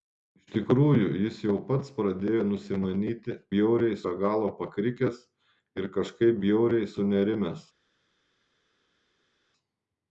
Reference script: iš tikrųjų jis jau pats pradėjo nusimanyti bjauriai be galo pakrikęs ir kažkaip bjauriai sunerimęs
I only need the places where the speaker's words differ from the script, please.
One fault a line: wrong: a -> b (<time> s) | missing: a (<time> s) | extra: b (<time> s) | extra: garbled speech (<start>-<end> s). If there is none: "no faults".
no faults